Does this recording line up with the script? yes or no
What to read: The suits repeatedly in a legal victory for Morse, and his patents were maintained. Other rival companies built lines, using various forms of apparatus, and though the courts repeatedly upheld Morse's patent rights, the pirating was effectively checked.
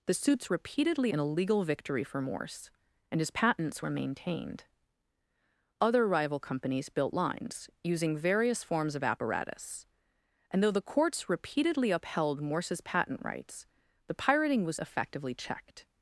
yes